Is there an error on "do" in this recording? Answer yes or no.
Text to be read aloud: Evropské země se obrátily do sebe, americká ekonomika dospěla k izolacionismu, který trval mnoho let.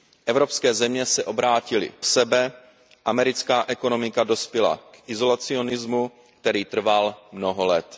yes